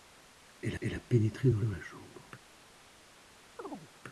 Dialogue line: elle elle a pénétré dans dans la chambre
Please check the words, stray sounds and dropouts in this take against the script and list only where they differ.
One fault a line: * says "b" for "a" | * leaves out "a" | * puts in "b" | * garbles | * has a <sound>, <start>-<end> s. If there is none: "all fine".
* has a chirp, 3.6-3.9 s